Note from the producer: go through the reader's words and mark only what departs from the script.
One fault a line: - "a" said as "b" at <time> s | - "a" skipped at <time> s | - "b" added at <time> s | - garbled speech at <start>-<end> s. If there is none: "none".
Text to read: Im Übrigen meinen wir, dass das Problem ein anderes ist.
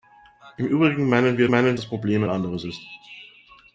- "dass" said as "meinen" at 1.5 s